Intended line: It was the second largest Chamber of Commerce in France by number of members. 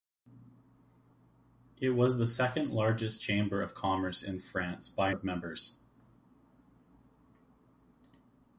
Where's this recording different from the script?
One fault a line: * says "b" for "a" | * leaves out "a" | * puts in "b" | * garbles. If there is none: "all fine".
* leaves out "number"